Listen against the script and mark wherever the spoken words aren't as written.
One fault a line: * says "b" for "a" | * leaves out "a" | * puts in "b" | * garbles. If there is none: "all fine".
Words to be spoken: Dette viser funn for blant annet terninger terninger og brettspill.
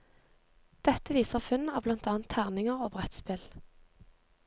* says "av" for "for"
* leaves out "terninger"